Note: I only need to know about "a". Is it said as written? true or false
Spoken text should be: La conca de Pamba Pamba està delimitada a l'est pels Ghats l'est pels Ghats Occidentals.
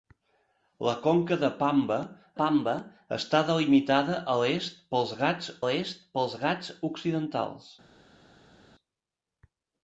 true